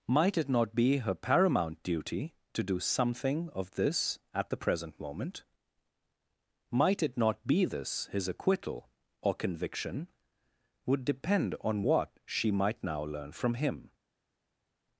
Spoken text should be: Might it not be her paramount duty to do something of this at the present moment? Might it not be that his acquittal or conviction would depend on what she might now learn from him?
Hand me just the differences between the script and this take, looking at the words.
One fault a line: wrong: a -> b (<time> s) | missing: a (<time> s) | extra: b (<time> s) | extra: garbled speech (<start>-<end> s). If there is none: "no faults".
wrong: that -> this (7.6 s)